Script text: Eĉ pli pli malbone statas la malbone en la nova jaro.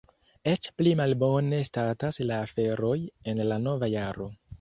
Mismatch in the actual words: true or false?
true